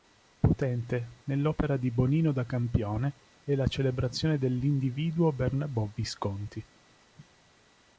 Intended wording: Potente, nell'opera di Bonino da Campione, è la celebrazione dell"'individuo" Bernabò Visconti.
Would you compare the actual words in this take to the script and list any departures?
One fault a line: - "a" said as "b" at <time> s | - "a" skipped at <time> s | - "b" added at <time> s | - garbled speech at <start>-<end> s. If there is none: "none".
none